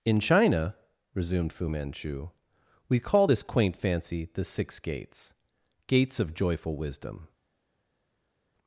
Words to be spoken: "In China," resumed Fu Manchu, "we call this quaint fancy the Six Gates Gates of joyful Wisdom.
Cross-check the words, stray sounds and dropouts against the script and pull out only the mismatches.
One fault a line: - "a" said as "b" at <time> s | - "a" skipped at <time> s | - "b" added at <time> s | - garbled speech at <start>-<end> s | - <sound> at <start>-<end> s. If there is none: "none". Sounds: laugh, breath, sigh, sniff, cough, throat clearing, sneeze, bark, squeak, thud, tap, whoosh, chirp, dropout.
none